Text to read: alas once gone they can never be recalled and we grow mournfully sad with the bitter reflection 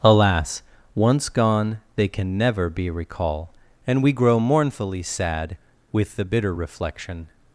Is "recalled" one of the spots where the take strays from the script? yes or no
yes